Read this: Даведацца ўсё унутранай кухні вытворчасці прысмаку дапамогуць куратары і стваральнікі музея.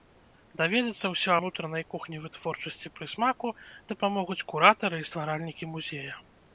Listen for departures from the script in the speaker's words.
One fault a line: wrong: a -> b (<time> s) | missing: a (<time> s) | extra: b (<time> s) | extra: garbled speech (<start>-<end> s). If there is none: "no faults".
no faults